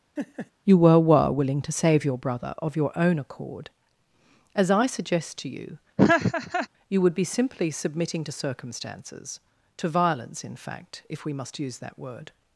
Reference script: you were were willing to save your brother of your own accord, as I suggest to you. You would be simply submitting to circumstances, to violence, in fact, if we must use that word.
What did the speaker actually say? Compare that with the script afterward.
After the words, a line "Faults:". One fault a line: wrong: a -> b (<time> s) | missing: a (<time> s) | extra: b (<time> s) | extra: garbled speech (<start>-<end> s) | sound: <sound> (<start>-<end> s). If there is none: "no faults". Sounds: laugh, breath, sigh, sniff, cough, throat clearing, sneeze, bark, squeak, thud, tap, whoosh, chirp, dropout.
you were were willing to save your brother of your own accord, as I suggest to you. You would be simply submitting to circumstances, to violence, in fact, if we must use that word.
Faults:
sound: laugh (0.2-0.5 s)
sound: laugh (6.0-6.7 s)